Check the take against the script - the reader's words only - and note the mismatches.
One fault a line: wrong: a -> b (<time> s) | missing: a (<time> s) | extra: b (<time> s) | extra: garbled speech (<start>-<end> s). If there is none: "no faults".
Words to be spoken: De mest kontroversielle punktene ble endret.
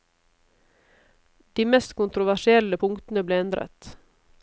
no faults